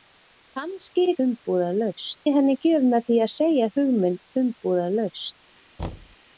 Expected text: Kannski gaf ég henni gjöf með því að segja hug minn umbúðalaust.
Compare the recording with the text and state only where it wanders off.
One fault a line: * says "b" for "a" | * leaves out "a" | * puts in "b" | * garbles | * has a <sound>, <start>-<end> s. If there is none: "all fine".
* says "umbúðalaust" for "gaf"
* has a thud, 5.8-6.2 s